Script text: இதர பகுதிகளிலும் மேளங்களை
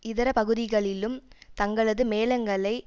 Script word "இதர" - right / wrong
right